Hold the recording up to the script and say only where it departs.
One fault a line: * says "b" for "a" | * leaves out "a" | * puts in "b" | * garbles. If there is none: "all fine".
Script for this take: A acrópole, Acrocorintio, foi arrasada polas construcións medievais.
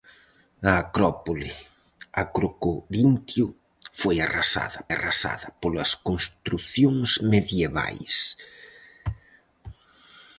* puts in "arrasada"